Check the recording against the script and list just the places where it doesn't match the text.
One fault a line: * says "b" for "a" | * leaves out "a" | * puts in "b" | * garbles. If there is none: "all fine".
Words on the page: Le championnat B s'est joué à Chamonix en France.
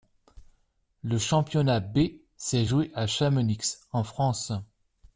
all fine